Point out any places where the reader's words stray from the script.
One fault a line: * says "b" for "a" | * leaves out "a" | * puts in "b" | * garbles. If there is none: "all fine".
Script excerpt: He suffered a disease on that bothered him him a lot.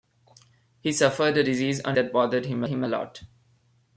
all fine